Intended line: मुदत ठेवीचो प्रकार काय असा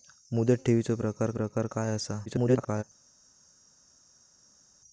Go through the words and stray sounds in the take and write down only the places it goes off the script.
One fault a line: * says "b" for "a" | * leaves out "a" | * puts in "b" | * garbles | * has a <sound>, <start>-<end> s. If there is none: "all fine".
* puts in "प्रकार"
* garbles